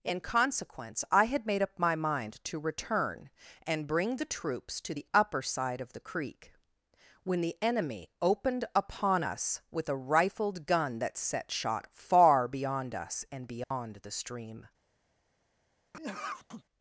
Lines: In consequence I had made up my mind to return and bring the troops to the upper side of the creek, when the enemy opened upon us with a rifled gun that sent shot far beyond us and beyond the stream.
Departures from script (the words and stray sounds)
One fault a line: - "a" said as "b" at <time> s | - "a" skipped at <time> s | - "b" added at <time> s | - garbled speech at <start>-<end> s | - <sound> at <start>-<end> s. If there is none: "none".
- "sent" said as "set" at 11.2 s
- dropout at 13.6-13.7 s
- sneeze at 15.9-16.6 s